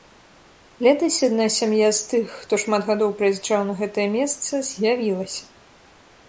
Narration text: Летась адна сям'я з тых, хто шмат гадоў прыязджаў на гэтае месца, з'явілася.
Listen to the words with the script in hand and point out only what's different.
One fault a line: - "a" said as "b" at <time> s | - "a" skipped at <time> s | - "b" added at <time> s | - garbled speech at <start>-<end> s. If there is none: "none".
none